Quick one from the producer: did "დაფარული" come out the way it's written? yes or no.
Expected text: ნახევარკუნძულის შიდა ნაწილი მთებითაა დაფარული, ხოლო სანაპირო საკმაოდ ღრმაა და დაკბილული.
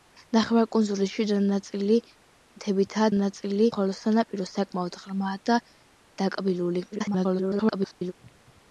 no